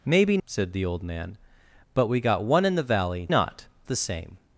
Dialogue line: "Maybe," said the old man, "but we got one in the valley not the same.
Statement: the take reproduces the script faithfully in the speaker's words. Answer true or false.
true